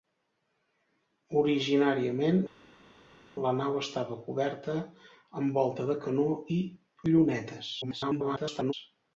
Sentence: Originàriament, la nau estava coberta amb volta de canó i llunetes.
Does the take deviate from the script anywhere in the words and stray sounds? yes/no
yes